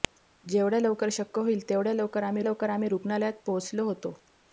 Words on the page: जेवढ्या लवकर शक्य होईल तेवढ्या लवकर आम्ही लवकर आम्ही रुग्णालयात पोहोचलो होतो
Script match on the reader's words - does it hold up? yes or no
yes